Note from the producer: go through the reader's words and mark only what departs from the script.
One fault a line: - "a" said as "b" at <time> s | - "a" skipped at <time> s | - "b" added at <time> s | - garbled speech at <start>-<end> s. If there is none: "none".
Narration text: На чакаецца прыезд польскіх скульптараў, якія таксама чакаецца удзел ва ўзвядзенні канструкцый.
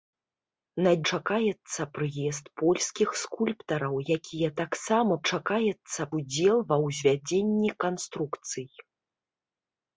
none